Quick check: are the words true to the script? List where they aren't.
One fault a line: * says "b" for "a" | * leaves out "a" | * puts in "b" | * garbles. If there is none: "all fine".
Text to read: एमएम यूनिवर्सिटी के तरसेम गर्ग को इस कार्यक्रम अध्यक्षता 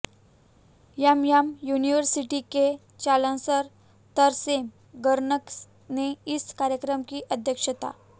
* puts in "चांसलर"
* says "ने" for "को"
* puts in "की"